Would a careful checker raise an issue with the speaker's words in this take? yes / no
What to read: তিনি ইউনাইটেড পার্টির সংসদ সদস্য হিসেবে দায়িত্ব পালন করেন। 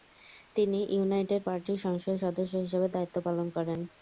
no